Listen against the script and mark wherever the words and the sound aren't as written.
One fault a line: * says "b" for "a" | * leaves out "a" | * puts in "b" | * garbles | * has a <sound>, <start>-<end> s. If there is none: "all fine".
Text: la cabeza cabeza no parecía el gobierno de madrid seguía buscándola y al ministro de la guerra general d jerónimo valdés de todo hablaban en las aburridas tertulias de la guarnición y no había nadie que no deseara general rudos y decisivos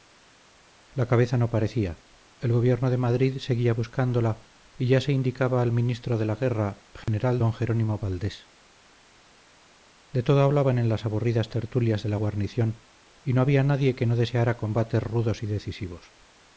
* leaves out "cabeza"
* puts in "ya se indicaba"
* has a dropout, 7.0-7.1 s
* says "combates" for "general"